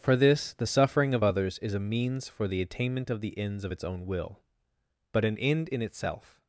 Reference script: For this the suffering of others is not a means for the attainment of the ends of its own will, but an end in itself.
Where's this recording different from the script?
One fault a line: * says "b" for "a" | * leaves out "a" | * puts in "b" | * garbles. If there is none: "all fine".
* leaves out "not"